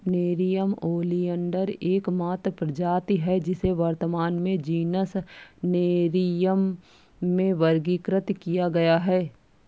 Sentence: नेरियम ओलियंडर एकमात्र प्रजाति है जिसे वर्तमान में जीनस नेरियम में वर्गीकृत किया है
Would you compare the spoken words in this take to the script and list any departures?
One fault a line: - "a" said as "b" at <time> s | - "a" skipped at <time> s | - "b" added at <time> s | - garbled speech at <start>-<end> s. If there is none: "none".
- "गया" added at 8.7 s